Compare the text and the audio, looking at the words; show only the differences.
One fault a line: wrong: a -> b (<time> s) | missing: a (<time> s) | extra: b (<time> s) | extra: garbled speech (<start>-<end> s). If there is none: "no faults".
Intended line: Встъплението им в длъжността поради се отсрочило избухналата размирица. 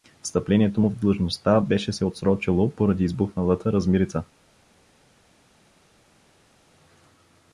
wrong: им -> му (0.8 s)
wrong: поради -> беше (1.6 s)
extra: поради (2.7 s)